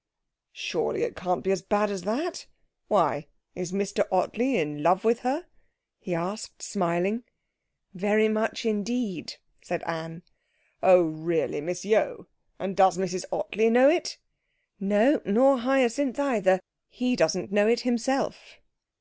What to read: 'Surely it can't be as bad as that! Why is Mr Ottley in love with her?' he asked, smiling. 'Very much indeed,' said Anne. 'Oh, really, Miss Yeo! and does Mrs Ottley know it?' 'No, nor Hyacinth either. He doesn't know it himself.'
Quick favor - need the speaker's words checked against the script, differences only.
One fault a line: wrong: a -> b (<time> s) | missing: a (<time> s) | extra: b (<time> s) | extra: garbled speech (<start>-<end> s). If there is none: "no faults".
no faults